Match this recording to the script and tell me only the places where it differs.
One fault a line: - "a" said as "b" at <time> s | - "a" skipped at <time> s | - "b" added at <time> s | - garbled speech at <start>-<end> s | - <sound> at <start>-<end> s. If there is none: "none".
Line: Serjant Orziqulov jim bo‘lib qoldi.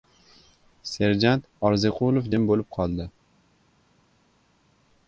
none